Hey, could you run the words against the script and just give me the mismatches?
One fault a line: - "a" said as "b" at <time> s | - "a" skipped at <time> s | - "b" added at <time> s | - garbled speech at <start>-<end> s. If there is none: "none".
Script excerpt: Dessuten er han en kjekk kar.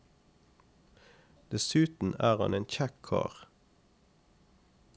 none